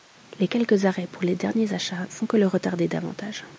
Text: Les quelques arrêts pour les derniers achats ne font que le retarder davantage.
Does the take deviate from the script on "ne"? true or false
true